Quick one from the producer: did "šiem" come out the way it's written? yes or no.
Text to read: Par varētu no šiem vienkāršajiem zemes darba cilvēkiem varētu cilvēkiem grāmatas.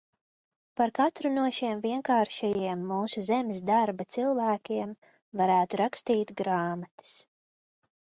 yes